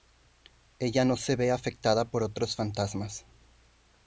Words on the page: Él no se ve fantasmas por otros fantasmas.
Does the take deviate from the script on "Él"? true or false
true